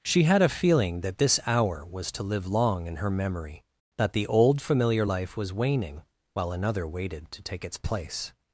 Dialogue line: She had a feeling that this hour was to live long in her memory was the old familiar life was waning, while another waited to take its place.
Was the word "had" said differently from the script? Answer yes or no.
no